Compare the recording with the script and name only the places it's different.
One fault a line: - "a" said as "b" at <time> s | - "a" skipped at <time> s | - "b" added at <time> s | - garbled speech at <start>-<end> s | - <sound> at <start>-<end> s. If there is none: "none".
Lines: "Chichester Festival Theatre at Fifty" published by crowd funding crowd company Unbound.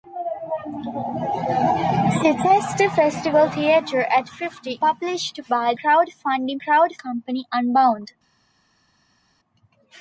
none